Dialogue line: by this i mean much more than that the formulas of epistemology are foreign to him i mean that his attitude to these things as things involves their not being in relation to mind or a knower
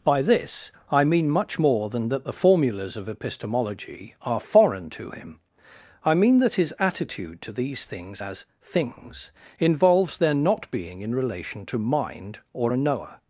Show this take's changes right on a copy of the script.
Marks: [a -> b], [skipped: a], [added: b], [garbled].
by this i mean much more than that the formulas of epistemology are foreign to him i mean that his attitude to these things as things involves their not being in relation to mind or a knower